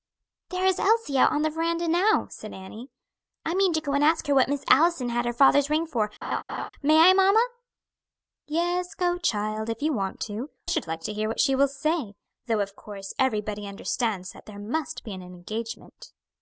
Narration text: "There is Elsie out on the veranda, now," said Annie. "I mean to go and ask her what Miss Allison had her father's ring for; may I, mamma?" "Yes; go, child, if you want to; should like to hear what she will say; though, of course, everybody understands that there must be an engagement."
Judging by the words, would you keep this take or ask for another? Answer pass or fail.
pass